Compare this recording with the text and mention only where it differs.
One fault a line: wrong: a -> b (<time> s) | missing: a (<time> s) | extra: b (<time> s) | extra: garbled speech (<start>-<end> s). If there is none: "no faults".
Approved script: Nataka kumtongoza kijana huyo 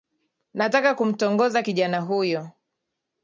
no faults